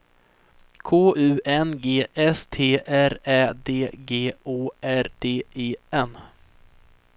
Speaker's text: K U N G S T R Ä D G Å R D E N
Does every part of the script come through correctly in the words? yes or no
yes